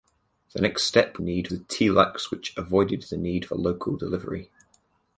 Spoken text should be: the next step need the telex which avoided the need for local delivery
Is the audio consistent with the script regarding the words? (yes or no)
yes